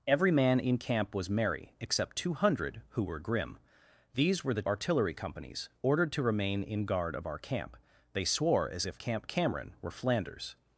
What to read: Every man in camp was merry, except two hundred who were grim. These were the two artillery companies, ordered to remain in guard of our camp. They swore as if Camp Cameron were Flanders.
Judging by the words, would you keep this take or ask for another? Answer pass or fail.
fail